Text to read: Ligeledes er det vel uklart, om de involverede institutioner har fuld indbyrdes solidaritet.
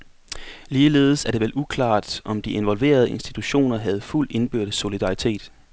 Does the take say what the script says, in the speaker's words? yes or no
no